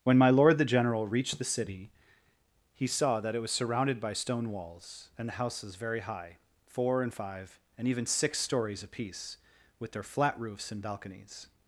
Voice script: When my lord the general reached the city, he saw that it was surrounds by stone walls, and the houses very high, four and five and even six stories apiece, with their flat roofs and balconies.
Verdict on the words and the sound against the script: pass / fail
fail